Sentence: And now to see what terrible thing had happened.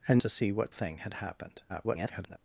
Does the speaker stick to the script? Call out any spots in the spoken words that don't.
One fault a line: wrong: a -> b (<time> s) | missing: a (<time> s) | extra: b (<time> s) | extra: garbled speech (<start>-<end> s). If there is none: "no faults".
missing: now (0.2 s)
missing: terrible (0.7 s)
extra: garbled speech (1.7-2.4 s)